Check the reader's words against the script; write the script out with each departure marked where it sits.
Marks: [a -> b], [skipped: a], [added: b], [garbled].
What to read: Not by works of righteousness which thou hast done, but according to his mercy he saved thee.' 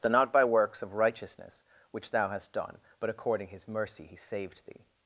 Not by works of righteousness which thou hast done, but according [skipped: to] his mercy he saved thee.'